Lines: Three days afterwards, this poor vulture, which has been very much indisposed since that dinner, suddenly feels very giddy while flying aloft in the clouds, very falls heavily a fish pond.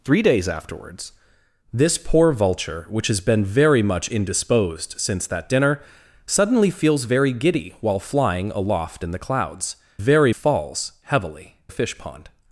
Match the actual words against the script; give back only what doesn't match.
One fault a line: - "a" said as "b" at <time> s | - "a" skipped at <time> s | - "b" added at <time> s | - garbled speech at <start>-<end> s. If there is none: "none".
none